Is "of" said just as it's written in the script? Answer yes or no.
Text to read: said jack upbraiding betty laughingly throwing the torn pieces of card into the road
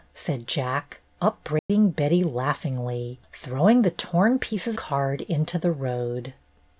no